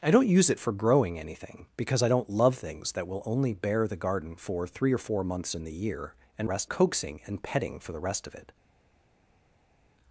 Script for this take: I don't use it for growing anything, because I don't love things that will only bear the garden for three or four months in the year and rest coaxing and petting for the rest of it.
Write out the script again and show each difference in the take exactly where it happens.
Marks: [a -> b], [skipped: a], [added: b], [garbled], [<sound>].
I don't use it for growing anything, because I don't love things that will only bear the garden for three or four months in the year and rest coaxing and petting for the rest of it.